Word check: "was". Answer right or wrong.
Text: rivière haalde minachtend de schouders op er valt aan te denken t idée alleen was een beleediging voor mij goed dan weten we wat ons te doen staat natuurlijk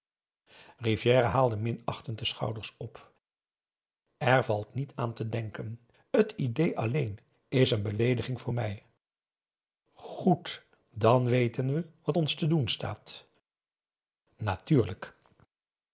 wrong